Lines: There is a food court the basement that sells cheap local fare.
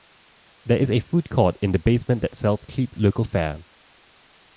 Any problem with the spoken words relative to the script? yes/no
yes